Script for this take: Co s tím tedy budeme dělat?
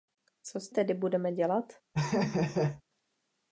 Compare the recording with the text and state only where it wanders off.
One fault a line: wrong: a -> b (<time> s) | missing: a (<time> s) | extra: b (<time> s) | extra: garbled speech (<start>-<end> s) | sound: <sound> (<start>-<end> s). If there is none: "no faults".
missing: tím (0.7 s)
sound: laugh (1.9-2.8 s)